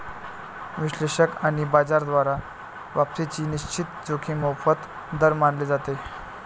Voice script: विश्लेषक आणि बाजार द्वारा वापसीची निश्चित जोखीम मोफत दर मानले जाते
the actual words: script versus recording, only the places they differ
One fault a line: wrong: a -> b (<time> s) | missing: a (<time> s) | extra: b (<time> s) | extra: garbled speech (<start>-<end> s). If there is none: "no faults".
no faults